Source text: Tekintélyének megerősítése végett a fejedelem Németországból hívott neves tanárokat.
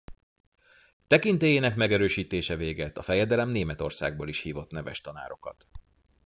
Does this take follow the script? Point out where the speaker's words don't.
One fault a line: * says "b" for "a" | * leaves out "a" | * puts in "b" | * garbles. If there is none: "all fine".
* puts in "is"